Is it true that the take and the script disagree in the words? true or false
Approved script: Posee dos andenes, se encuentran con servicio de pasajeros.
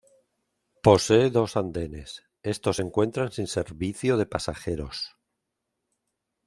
true